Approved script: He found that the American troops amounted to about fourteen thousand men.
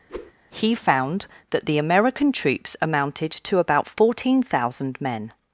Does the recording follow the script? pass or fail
pass